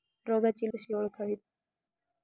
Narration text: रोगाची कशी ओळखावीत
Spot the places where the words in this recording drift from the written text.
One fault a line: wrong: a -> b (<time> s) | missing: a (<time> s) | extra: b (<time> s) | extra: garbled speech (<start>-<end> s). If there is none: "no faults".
no faults